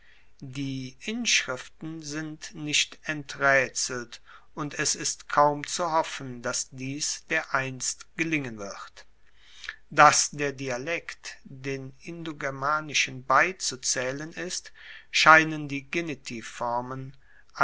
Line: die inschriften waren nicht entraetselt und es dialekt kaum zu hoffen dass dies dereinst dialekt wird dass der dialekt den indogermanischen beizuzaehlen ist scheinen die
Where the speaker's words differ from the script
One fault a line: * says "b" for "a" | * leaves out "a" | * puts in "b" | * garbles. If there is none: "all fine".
* says "sind" for "waren"
* says "ist" for "dialekt"
* says "gelingen" for "dialekt"